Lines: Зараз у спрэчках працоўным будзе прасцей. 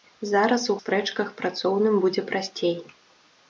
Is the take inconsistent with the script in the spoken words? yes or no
no